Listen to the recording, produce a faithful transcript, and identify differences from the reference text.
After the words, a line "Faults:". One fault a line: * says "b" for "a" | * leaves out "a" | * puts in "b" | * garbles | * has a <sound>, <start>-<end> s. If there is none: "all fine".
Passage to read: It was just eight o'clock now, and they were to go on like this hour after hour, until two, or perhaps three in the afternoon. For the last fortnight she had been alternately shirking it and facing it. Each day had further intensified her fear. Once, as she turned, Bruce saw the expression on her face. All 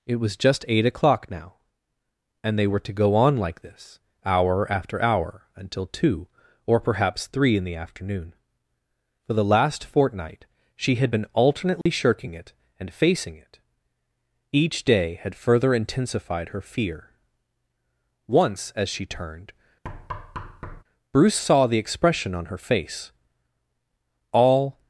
It was just eight o'clock now, and they were to go on like this hour after hour, until two, or perhaps three in the afternoon. For the last fortnight she had been alternately shirking it and facing it. Each day had further intensified her fear. Once, as she turned, Bruce saw the expression on her face. All
Faults:
* has a dropout, 11.8-11.9 s
* has a thud, 19.8-20.8 s